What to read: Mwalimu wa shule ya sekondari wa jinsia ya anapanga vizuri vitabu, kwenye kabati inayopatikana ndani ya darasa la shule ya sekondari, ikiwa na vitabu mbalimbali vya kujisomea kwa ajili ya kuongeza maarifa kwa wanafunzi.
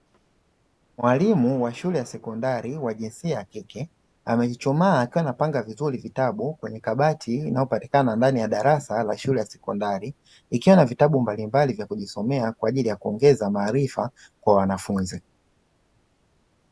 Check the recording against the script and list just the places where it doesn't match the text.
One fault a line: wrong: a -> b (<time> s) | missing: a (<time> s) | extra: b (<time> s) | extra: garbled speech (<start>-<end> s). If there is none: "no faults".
extra: kike amechuchumaa akiwa (3.5 s)